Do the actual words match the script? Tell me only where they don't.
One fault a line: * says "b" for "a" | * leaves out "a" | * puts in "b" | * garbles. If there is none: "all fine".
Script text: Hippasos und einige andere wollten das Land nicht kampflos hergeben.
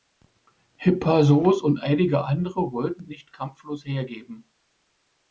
* leaves out "das Land"